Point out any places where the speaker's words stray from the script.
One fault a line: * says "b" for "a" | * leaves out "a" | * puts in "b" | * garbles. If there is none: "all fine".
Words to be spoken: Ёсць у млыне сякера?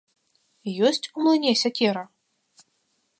all fine